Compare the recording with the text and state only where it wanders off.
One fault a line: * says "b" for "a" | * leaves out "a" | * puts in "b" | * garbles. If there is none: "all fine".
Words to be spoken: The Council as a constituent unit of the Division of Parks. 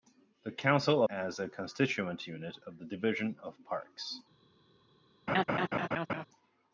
all fine